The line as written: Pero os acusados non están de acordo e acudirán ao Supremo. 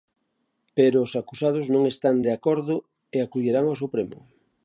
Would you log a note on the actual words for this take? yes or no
no